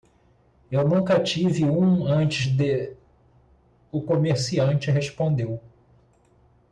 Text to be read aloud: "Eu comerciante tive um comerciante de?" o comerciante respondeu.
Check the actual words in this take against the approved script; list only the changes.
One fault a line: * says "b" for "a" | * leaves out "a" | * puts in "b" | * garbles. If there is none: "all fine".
* says "nunca" for "comerciante"
* says "antes" for "comerciante"